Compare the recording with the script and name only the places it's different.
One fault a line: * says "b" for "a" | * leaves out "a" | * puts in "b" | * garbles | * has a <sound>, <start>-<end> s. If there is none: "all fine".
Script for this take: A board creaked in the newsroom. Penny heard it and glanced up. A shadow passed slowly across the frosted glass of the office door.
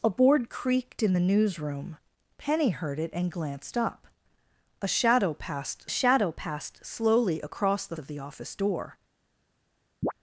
* puts in "shadow passed"
* leaves out "frosted glass"
* has a chirp, 10.0-10.1 s